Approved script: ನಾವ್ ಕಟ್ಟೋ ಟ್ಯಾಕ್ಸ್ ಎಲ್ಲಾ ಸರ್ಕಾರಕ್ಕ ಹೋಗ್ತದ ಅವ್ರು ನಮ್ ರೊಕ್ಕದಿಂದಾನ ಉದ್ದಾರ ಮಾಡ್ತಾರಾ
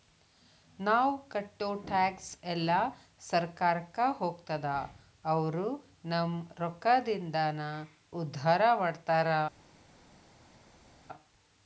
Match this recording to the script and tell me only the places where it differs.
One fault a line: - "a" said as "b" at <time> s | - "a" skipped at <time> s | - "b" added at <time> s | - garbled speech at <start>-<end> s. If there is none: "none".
none